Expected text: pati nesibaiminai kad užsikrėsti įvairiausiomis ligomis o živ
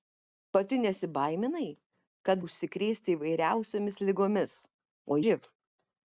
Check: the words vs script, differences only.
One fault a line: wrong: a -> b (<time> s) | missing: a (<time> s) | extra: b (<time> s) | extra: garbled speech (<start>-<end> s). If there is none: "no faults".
no faults